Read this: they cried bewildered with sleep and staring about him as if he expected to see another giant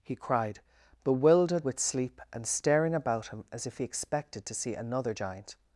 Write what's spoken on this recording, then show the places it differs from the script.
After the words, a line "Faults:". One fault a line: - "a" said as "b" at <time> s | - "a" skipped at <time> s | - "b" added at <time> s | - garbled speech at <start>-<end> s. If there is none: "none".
he cried bewildered with sleep and staring about him as if he expected to see another giant
Faults:
- "they" said as "he" at 0.0 s